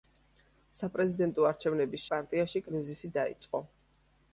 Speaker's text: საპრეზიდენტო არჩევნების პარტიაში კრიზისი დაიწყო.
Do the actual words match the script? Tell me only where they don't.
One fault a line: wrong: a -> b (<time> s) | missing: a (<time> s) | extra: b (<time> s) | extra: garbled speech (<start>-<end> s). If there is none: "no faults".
no faults